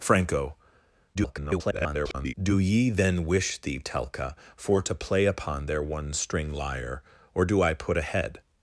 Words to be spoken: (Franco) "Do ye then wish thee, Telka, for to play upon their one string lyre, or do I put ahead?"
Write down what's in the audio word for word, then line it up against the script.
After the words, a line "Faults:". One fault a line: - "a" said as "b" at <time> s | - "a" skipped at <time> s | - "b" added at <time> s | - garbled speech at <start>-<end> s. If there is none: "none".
(Franco) [garbled] "Do ye then wish thee, Telka, for to play upon their one string lyre, or do I put ahead?"
Faults:
- garbled speech at 1.1-2.3 s